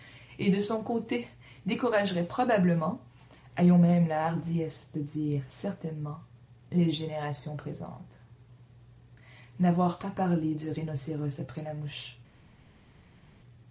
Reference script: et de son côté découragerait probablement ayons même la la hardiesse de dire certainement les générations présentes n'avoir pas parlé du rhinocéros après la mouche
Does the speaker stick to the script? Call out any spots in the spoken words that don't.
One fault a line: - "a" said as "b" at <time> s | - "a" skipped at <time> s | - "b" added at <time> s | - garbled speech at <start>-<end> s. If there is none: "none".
- "la" skipped at 4.2 s